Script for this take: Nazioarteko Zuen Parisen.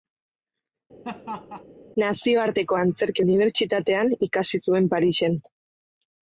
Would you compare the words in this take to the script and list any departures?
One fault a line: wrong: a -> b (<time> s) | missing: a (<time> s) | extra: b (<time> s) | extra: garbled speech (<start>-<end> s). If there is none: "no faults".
extra: Antzerki Unibertsitatean ikasi (2.8 s)